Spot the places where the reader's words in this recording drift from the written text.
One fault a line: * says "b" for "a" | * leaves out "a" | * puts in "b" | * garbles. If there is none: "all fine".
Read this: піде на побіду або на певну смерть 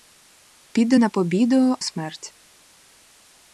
* leaves out "або на певну"